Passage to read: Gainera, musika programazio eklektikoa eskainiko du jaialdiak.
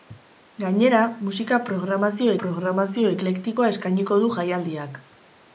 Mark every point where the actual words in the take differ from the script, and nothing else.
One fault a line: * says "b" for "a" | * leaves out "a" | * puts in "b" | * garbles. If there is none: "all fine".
* puts in "programazio"